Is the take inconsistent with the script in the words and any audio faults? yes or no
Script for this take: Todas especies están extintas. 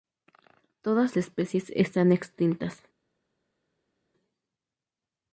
no